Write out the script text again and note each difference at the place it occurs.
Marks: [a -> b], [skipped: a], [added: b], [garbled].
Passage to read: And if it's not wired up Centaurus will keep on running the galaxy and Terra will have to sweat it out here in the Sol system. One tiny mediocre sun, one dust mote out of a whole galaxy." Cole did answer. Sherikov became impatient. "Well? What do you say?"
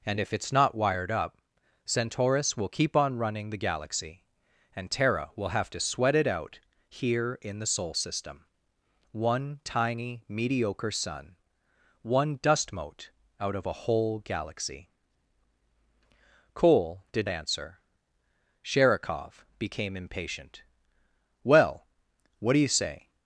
And if it's not wired up Centaurus will keep on running the galaxy and Terra will have to sweat it out here in the Sol system. One tiny mediocre sun, one dust mote out of a whole galaxy." Cole did answer. Sherikov became impatient. "Well? What do you say?"